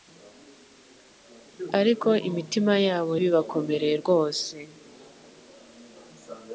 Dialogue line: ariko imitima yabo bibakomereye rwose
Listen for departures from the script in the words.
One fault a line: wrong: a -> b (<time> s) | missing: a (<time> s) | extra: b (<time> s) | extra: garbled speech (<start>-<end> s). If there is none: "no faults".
no faults